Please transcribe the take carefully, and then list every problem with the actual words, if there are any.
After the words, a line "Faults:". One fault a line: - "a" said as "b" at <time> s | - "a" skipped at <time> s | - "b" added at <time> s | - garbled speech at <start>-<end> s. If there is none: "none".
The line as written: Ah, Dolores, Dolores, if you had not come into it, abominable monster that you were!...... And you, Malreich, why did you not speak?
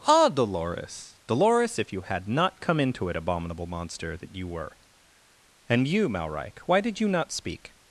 Ah, Dolores, Dolores, if you had not come into it, abominable monster that you were!...... And you, Malreich, why did you not speak?
Faults:
none